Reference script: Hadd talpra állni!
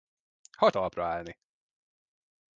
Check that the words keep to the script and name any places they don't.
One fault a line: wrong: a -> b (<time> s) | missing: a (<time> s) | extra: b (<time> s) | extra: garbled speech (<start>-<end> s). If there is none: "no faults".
no faults